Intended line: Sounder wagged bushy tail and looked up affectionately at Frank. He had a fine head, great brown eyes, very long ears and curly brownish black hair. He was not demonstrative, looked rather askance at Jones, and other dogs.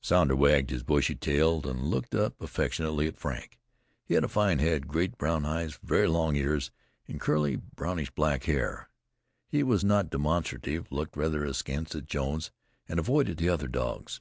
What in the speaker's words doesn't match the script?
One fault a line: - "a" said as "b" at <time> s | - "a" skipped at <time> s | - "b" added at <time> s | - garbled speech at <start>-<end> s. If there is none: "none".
- "his" added at 0.7 s
- "avoided the" added at 13.0 s